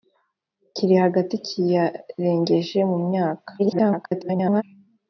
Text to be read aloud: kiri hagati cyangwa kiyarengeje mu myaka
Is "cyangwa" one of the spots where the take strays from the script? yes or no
yes